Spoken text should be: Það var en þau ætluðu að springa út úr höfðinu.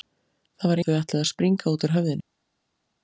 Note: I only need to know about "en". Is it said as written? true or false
true